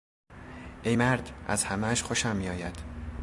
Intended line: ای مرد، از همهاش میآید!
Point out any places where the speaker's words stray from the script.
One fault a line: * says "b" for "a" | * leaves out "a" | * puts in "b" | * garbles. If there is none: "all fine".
* puts in "خوشم"